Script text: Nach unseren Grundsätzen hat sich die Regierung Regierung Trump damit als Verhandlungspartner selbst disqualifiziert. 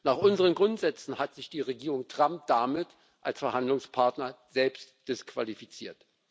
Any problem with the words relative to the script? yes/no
yes